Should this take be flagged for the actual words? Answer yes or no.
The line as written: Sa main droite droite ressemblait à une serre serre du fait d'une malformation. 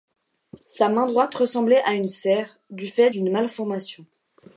yes